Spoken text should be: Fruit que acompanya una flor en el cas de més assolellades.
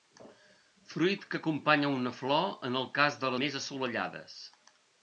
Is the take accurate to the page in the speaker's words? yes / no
yes